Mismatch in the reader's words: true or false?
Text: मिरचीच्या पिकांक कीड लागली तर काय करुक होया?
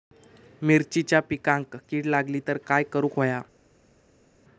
false